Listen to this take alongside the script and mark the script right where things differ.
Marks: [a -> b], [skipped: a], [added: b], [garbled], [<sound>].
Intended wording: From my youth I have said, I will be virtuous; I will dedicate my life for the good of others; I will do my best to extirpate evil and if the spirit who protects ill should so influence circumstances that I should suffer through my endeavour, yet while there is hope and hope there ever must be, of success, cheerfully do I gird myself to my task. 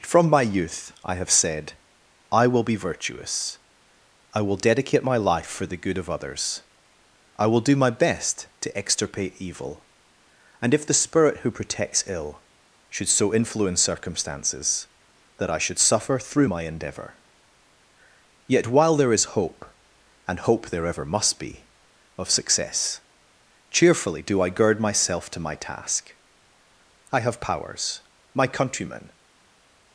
From my youth I have said, I will be virtuous; I will dedicate my life for the good of others; I will do my best to extirpate evil and if the spirit who protects ill should so influence circumstances that I should suffer through my endeavour, yet while there is hope and hope there ever must be, of success, cheerfully do I gird myself to my task. [added: I have powers my countrymen]